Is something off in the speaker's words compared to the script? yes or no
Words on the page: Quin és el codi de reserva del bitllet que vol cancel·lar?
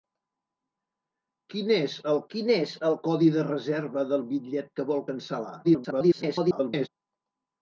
yes